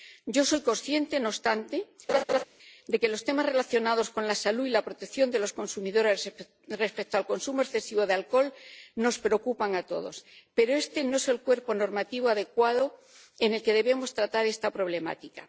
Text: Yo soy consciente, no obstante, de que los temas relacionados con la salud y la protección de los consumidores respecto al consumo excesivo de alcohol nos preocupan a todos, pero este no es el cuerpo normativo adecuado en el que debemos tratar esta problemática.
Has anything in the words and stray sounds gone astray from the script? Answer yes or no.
yes